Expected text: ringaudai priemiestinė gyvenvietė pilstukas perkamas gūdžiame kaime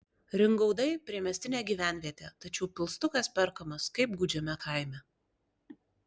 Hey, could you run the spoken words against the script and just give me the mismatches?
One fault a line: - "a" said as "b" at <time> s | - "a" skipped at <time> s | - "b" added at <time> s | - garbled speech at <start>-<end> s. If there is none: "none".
- "tačiau" added at 2.5 s
- "kaip" added at 4.0 s